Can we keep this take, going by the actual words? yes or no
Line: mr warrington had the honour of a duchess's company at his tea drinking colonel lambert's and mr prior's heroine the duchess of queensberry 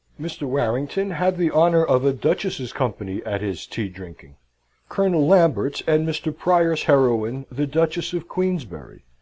yes